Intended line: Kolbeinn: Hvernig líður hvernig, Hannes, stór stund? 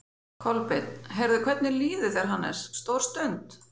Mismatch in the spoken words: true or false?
true